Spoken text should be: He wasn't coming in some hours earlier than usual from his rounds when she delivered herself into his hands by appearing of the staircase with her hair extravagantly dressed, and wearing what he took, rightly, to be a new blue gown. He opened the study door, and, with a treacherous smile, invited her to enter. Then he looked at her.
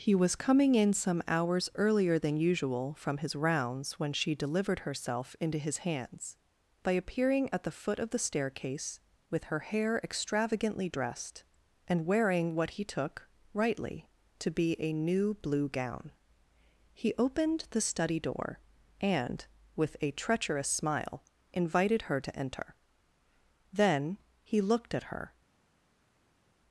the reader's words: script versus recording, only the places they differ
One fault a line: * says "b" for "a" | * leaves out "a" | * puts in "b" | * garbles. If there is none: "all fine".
* says "was" for "wasn't"
* puts in "at the foot"